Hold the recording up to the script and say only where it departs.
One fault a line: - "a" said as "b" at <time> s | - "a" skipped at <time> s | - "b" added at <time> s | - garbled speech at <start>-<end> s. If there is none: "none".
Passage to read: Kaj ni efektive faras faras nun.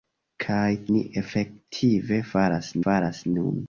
none